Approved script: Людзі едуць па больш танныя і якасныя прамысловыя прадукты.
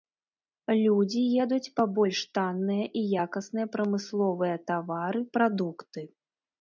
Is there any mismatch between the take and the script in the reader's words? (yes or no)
yes